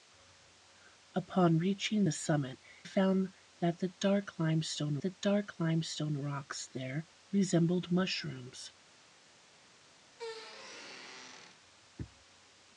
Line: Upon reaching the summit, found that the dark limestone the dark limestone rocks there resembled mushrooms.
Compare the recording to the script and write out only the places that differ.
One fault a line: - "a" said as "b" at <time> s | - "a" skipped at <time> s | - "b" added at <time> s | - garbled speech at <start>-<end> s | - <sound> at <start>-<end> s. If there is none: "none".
- squeak at 10.1-11.6 s